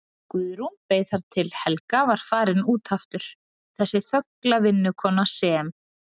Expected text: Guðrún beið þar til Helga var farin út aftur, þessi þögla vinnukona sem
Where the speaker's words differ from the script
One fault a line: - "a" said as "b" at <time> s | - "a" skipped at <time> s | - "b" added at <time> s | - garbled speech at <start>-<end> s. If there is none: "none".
none